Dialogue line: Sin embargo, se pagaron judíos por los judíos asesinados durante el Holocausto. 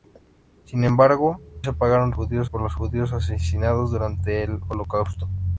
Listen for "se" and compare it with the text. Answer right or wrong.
right